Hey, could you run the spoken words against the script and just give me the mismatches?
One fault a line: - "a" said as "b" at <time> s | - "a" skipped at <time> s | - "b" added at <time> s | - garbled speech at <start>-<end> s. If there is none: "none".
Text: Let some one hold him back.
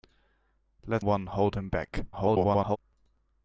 - "some" skipped at 1.1 s
- garbled speech at 2.1-2.8 s